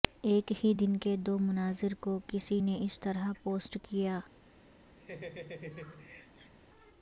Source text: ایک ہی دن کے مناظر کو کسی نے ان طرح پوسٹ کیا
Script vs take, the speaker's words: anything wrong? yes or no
yes